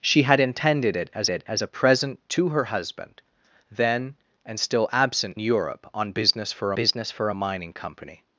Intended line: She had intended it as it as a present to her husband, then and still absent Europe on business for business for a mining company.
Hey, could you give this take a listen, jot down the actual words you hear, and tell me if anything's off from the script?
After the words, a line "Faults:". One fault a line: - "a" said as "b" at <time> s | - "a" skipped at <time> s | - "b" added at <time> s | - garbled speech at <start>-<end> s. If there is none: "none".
She had intended it as it as a present to her husband, then and still absent Europe on business for business for a mining company.
Faults:
none